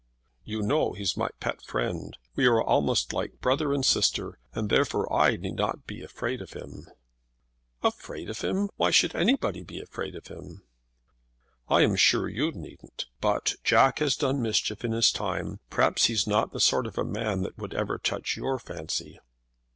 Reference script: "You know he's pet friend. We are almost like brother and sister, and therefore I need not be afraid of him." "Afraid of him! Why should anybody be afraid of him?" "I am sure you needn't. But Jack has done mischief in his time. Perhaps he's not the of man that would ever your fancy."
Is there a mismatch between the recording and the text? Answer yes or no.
yes